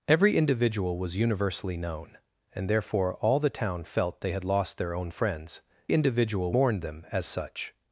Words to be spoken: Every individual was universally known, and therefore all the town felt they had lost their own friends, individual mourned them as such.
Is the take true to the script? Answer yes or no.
yes